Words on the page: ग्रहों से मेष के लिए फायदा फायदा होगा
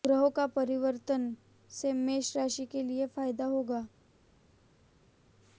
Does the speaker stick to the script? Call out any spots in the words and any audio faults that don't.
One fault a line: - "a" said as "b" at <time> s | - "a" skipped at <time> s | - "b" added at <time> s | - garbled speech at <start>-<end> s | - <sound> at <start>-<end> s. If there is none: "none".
- "का परिवर्तन" added at 0.3 s
- "राशि" added at 2.4 s
- "फायदा" skipped at 3.5 s